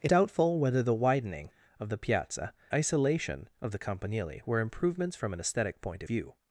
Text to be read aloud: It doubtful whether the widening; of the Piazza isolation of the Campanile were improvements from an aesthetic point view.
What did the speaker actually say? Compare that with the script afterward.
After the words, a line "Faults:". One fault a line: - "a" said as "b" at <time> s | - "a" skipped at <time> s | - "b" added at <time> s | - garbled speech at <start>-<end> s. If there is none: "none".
It doubtful whether the widening; of the Piazza isolation of the Campanile were improvements from an aesthetic point view.
Faults:
none